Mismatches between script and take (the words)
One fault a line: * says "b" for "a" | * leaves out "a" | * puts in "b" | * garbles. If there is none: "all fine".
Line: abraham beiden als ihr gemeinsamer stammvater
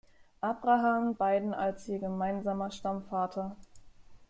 all fine